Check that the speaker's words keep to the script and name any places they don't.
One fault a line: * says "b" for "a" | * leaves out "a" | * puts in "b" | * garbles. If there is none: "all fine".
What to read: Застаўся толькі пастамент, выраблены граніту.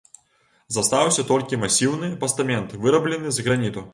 * puts in "масіўны"
* puts in "з"